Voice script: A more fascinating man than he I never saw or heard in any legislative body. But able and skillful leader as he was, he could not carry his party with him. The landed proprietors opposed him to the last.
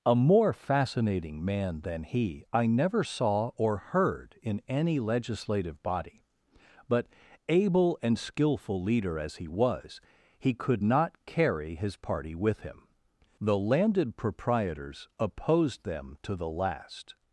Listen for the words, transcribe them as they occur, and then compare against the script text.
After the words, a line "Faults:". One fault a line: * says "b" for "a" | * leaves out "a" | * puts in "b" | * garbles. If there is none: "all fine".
A more fascinating man than he I never saw or heard in any legislative body. But able and skillful leader as he was, he could not carry his party with him. The landed proprietors opposed them to the last.
Faults:
* says "them" for "him"